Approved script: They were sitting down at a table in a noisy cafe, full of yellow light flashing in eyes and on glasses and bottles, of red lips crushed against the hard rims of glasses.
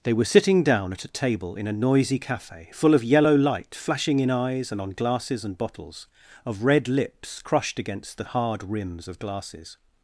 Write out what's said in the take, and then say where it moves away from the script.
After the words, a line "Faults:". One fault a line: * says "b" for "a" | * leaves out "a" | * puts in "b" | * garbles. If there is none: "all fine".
They were sitting down at a table in a noisy cafe, full of yellow light flashing in eyes and on glasses and bottles, of red lips crushed against the hard rims of glasses.
Faults:
all fine